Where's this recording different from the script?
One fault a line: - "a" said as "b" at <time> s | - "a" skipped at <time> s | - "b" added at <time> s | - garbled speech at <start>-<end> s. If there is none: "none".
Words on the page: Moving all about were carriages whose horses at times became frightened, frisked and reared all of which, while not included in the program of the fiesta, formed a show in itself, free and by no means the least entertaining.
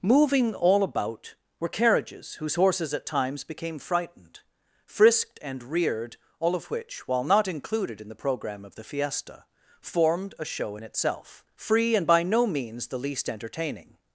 none